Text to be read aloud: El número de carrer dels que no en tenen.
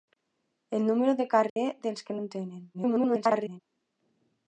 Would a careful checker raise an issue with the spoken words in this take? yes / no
yes